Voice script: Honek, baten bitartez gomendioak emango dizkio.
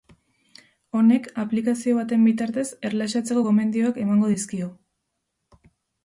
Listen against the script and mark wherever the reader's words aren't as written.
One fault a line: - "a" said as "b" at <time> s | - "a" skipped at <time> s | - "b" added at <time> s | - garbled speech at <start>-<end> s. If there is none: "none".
- "aplikazio" added at 1.4 s
- "erlaxatzeko" added at 2.9 s